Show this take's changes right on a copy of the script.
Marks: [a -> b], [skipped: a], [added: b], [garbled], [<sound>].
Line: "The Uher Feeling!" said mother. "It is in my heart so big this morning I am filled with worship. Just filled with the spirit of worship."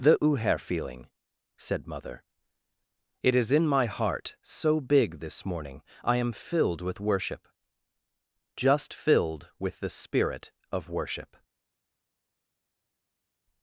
"The Uher Feeling!" said mother. "It is in my heart so big this morning I am filled with worship. Just filled with the spirit of worship."